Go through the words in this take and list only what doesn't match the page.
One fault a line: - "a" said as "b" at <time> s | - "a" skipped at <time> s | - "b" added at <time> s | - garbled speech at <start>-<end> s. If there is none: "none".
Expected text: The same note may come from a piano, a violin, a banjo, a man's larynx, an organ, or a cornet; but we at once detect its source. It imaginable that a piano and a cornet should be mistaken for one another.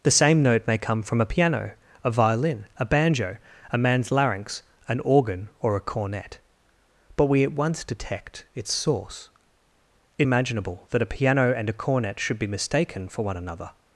none